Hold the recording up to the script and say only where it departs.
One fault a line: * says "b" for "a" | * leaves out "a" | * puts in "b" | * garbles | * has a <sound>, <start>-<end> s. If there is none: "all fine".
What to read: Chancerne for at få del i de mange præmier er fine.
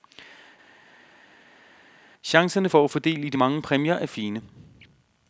all fine